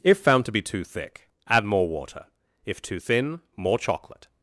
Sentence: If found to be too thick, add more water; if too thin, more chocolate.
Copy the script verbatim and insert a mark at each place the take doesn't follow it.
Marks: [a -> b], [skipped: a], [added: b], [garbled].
If found to be too thick, add more water; if too thin, more chocolate.